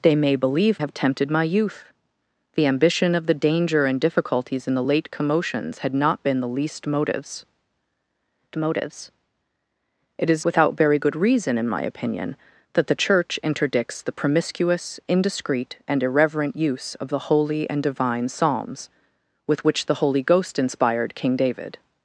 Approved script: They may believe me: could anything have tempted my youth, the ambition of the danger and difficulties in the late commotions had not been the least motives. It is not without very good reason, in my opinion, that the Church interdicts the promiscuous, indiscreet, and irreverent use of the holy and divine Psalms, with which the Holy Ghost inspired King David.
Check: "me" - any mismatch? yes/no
yes